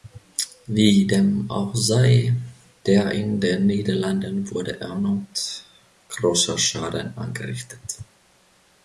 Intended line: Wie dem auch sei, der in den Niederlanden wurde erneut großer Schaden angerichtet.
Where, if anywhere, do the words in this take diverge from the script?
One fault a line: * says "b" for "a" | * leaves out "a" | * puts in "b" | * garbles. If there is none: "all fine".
all fine